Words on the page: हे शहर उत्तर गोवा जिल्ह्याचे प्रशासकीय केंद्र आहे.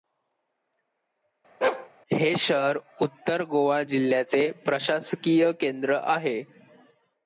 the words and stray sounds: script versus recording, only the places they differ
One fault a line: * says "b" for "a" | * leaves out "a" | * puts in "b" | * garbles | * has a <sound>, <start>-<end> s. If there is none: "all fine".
* has a bark, 1.6-1.9 s